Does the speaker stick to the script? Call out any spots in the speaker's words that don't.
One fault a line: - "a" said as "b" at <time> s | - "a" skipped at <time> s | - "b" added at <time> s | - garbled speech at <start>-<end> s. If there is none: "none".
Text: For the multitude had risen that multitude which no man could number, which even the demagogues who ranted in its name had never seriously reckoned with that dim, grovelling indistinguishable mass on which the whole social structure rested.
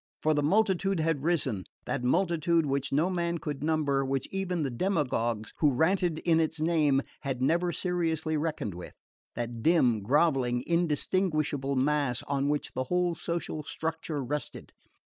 none